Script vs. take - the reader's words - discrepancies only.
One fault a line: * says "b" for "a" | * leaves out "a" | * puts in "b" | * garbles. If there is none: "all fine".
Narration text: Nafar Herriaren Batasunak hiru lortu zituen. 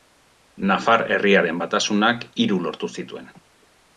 all fine